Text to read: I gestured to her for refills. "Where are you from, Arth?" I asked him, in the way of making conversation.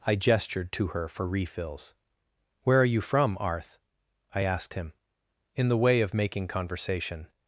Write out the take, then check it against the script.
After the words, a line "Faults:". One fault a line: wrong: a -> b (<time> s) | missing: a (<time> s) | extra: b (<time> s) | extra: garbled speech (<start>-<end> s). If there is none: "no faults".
I gestured to her for refills. "Where are you from, Arth?" I asked him, in the way of making conversation.
Faults:
no faults